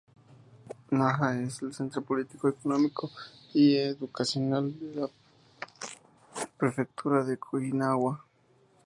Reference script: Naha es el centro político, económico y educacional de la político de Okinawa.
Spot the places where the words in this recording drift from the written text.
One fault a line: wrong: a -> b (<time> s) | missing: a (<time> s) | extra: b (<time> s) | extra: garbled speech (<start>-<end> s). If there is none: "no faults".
wrong: político -> prefectura (6.6 s)